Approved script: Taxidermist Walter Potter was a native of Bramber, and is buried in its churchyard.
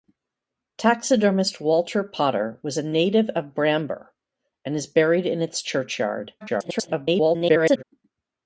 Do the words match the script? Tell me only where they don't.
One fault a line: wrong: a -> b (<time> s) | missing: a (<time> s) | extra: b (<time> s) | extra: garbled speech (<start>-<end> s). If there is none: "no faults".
extra: garbled speech (6.4-7.8 s)